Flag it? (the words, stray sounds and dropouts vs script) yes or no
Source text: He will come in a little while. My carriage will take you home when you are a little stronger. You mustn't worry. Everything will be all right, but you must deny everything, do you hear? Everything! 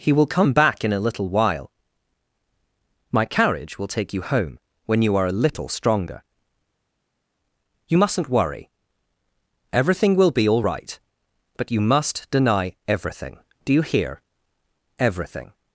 yes